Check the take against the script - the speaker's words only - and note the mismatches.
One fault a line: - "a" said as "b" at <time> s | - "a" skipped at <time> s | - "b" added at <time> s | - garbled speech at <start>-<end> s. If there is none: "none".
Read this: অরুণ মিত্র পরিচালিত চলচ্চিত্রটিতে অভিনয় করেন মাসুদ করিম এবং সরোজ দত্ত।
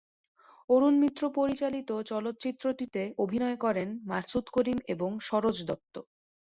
none